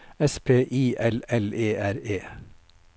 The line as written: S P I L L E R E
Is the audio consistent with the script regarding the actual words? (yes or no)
yes